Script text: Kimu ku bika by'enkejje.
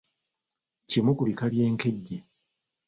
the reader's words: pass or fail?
pass